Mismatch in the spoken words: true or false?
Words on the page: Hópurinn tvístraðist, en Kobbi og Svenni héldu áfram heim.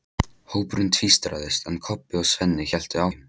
true